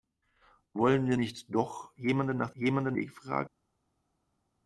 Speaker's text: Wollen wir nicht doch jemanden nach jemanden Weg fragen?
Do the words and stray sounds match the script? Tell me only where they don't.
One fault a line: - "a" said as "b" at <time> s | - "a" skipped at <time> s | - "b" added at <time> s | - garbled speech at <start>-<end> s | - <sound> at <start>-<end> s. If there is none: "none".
none